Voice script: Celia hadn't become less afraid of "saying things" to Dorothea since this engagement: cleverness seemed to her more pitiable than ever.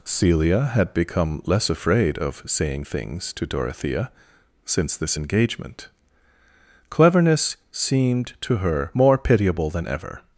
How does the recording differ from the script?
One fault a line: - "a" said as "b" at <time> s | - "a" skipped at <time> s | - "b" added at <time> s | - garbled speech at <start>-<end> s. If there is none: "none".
- "hadn't" said as "had" at 0.7 s